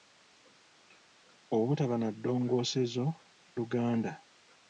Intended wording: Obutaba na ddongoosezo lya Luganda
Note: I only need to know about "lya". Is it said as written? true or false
false